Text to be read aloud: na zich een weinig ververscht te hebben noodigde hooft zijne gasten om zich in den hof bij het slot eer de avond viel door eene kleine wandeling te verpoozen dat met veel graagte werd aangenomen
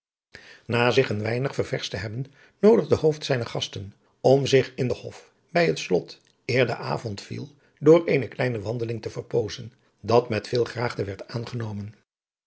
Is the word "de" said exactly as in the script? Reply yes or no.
yes